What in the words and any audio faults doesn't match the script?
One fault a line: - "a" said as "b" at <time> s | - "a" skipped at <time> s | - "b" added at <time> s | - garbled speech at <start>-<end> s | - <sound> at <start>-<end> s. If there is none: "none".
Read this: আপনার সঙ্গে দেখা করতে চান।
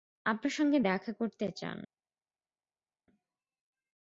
none